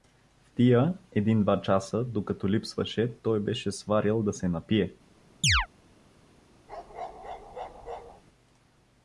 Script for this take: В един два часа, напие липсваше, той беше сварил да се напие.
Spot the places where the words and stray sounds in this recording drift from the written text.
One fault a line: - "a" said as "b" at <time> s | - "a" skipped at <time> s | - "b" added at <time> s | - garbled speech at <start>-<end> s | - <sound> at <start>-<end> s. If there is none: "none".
- "тия" added at 0.6 s
- "напие" said as "докато" at 2.0 s
- chirp at 5.4-5.7 s
- bark at 6.7-8.2 s